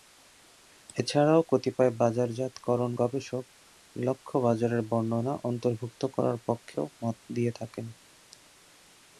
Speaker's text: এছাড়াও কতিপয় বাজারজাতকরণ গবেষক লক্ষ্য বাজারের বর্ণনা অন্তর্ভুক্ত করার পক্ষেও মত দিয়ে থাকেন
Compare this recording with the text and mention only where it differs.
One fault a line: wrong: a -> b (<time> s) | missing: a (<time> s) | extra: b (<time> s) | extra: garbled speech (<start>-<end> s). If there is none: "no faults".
no faults